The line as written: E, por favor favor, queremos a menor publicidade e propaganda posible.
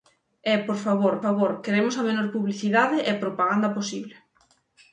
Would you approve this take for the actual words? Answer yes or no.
yes